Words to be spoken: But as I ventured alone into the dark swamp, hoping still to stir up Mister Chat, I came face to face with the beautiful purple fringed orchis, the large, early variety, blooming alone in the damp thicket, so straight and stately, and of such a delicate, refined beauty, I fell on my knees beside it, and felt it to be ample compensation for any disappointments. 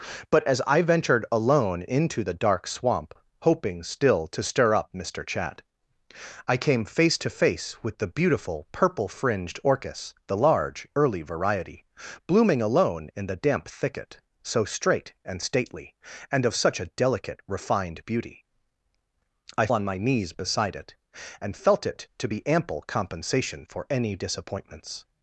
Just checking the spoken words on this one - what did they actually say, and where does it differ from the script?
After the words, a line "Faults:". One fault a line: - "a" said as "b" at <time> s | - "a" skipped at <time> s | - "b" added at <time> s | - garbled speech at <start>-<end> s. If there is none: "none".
But as I ventured alone into the dark swamp, hoping still to stir up Mister Chat, I came face to face with the beautiful purple fringed orchis, the large, early variety, blooming alone in the damp thicket, so straight and stately, and of such a delicate, refined beauty, I on my knees beside it, and felt it to be ample compensation for any disappointments.
Faults:
- "fell" skipped at 19.7 s